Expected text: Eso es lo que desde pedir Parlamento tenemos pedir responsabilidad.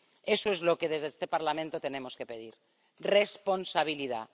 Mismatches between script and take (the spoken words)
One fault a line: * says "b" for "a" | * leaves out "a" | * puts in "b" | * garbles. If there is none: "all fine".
* says "este" for "pedir"
* puts in "que"